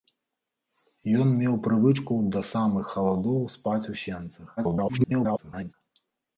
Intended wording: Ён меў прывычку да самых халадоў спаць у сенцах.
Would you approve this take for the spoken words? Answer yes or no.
no